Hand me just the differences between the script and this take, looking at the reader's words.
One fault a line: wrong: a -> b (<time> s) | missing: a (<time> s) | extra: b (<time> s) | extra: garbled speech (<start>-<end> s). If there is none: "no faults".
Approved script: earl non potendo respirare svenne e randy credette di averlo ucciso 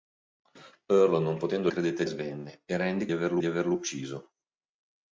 wrong: respirare -> credette (1.7 s)
wrong: credette -> averlo (3.1 s)